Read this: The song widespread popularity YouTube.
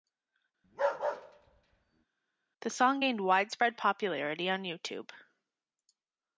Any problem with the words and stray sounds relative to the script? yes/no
yes